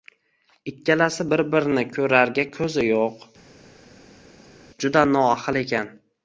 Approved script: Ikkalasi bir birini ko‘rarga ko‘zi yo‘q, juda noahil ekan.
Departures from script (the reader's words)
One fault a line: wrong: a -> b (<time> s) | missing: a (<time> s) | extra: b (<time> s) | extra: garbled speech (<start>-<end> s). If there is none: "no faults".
no faults